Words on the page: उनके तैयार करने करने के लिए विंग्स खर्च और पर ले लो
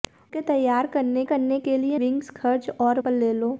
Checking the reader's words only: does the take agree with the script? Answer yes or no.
yes